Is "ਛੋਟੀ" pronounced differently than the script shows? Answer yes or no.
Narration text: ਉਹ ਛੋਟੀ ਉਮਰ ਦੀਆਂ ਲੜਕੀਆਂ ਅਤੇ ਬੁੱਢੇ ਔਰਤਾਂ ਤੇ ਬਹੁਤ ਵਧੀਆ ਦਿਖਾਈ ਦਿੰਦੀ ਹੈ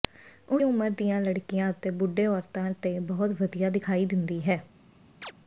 yes